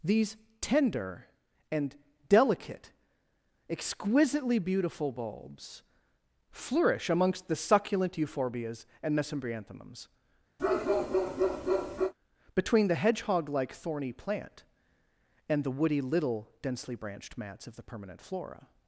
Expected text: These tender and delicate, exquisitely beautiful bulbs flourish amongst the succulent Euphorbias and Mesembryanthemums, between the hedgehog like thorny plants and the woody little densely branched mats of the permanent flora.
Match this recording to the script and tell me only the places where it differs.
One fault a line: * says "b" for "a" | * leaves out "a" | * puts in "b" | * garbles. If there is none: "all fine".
* says "plant" for "plants"